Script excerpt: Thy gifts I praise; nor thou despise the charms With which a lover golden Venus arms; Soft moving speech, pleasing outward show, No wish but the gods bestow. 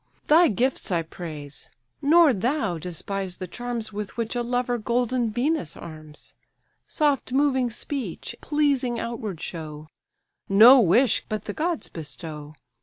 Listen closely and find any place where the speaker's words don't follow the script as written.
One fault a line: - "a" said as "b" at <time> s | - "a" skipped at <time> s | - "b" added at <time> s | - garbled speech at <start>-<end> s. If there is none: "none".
none